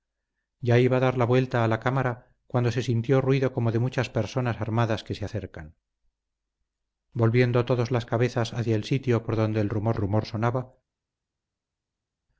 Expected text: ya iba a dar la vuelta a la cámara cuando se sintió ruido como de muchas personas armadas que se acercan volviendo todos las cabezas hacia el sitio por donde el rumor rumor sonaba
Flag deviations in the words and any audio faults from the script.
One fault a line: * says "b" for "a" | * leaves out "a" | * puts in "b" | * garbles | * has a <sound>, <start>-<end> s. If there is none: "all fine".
all fine